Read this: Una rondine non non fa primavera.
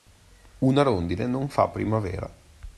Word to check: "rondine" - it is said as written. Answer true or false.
true